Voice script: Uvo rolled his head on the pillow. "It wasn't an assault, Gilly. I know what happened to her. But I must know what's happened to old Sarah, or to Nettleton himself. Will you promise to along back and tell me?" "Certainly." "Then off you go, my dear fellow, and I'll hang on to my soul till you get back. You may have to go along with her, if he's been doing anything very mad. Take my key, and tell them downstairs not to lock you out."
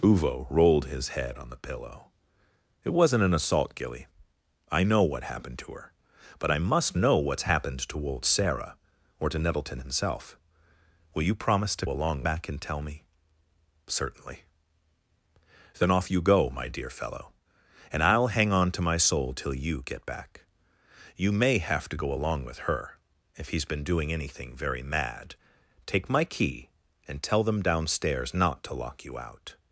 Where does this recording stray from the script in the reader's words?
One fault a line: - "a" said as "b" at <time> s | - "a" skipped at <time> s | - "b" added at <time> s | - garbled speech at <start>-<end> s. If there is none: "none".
none